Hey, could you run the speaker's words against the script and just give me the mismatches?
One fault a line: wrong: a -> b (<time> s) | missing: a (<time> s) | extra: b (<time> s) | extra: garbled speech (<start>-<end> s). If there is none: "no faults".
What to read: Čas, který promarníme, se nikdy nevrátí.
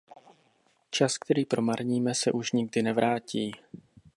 extra: už (2.3 s)